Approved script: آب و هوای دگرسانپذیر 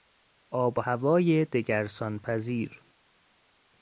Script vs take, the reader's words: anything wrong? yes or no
no